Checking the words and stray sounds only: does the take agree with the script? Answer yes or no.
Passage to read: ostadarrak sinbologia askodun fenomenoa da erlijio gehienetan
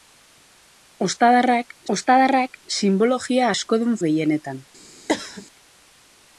no